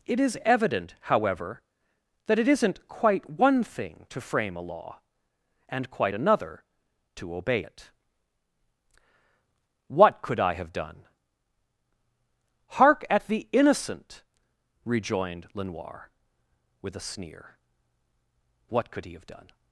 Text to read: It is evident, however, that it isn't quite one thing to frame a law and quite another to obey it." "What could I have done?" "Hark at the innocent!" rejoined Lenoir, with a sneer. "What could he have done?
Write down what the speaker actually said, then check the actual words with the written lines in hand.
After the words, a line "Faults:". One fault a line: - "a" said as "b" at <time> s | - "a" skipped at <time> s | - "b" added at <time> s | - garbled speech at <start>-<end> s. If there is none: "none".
It is evident, however, that it isn't quite one thing to frame a law and quite another to obey it." "What could I have done?" "Hark at the innocent!" rejoined Lenoir, with a sneer. "What could he have done?
Faults:
none